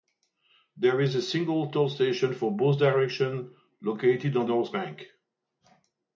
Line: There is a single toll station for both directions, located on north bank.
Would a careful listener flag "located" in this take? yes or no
no